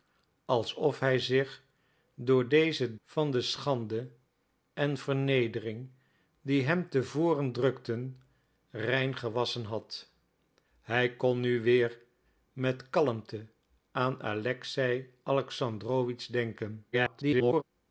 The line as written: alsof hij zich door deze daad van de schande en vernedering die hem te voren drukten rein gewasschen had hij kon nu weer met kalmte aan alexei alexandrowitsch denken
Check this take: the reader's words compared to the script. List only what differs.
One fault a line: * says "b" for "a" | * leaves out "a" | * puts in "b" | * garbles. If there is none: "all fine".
* leaves out "daad"
* garbles